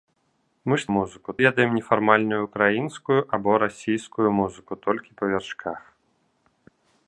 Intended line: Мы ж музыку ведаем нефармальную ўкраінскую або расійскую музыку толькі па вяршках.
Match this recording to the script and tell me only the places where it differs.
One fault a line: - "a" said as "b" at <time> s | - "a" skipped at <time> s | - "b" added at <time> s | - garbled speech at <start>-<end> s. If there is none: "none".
none